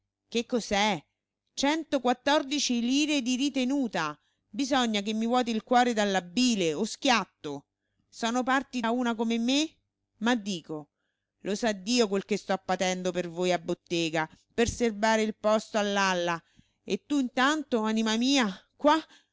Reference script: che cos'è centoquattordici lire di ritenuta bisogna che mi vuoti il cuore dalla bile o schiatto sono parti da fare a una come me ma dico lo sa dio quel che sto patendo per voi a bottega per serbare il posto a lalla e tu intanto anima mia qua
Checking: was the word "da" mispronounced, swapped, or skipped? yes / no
yes